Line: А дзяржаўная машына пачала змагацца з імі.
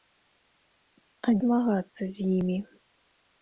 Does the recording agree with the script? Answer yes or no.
no